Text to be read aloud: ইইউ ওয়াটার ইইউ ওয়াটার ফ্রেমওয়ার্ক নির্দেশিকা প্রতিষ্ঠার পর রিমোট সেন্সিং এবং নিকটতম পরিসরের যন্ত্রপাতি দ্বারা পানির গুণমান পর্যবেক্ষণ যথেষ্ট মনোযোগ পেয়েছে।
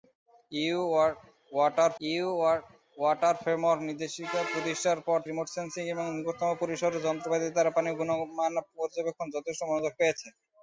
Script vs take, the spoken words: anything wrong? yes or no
no